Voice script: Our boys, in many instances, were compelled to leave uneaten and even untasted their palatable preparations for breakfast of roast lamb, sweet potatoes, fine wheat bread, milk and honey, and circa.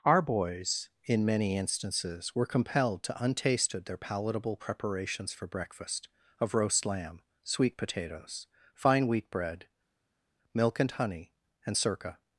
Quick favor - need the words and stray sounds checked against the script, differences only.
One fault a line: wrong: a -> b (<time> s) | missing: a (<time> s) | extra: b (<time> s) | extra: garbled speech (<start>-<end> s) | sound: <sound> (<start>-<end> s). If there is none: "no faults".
missing: leave uneaten and even (3.2 s)